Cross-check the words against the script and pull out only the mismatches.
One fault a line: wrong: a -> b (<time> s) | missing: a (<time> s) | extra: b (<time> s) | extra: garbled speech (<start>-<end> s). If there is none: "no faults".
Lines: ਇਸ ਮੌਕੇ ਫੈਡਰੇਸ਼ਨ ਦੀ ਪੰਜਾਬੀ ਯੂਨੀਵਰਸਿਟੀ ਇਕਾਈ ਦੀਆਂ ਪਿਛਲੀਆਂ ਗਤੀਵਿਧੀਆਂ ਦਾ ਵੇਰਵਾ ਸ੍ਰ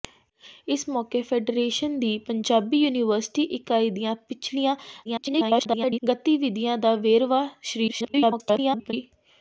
extra: garbled speech (5.0-6.0 s)
extra: garbled speech (7.9-8.9 s)